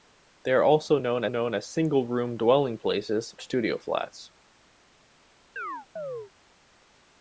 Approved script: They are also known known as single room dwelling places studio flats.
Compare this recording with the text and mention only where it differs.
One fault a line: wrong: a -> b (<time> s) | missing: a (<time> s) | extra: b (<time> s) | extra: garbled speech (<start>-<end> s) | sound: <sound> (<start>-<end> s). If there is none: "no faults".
sound: chirp (5.6-6.3 s)